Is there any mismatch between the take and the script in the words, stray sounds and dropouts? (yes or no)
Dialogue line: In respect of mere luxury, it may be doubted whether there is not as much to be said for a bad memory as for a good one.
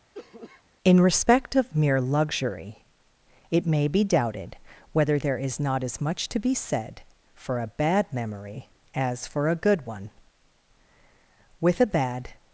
yes